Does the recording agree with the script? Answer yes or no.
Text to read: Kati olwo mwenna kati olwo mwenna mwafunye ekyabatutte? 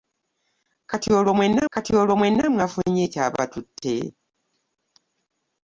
yes